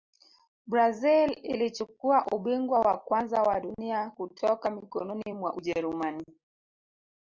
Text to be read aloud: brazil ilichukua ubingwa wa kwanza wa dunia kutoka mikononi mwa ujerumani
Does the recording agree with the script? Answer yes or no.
yes